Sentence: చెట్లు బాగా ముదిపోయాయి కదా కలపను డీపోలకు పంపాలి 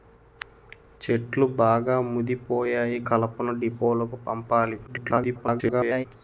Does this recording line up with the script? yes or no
no